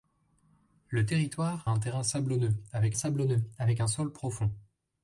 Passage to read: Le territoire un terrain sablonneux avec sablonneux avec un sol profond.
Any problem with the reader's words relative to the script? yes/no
no